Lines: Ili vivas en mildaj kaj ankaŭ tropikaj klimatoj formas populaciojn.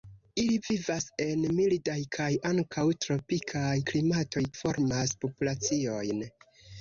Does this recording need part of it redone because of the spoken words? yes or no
no